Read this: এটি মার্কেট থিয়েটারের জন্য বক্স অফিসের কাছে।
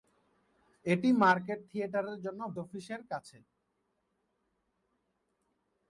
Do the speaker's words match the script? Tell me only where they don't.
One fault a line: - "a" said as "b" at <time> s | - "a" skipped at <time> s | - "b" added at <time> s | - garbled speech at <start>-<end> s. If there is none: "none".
- "বক্স" skipped at 2.4 s